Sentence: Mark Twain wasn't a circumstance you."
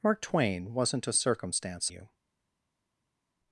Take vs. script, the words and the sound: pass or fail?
pass